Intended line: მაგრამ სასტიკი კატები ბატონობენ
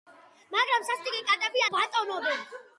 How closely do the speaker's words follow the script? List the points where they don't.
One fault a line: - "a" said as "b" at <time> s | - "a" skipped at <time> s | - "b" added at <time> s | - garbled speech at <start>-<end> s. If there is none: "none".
none